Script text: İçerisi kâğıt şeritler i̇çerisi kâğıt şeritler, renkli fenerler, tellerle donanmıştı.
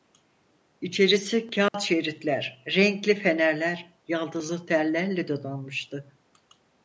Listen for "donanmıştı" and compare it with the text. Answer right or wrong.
right